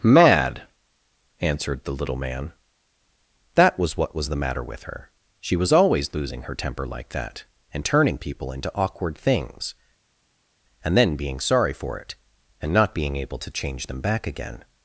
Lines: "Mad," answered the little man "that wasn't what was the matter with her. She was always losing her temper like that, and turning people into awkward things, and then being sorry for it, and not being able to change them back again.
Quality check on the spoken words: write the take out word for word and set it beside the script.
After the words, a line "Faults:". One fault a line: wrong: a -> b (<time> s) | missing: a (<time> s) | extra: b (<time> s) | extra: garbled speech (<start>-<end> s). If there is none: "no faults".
"Mad," answered the little man "that was what was the matter with her. She was always losing her temper like that, and turning people into awkward things, and then being sorry for it, and not being able to change them back again.
Faults:
wrong: wasn't -> was (3.8 s)